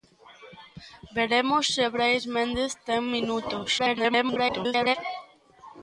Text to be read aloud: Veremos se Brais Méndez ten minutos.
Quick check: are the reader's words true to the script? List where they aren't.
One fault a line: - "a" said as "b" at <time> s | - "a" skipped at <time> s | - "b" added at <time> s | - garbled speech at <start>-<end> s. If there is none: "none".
- garbled speech at 3.8-5.0 s